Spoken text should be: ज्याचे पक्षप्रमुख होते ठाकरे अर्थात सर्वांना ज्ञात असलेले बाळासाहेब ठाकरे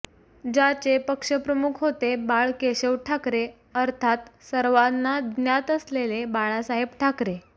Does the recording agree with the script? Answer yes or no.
no